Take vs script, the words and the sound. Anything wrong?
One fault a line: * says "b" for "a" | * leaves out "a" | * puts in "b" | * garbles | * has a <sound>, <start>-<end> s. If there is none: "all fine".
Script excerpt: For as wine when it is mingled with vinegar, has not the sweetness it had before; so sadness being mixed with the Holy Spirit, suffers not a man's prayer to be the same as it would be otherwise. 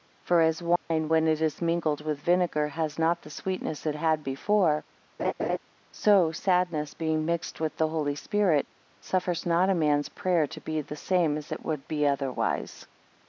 * has a dropout, 0.8-0.9 s
* has a laugh, 5.2-5.6 s